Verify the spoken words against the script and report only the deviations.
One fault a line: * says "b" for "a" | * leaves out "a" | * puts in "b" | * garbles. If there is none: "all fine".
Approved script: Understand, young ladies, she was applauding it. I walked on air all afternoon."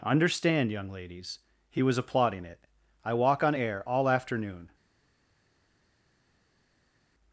* says "he" for "she"
* says "walk" for "walked"